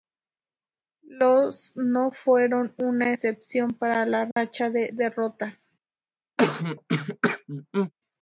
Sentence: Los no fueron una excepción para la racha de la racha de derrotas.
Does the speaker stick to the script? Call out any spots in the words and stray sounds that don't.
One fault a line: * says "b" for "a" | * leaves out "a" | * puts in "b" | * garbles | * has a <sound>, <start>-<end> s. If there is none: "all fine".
* has a dropout, 4.3-4.4 s
* leaves out "la racha de"
* has a throat clearing, 6.4-7.9 s